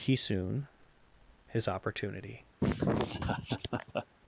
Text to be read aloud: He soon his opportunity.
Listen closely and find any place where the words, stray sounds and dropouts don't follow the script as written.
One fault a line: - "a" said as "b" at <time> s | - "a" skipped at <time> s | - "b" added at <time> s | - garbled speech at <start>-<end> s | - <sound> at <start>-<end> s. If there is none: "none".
- laugh at 2.6-4.1 s